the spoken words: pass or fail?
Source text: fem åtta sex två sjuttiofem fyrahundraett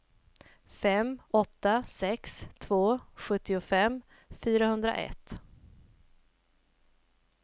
pass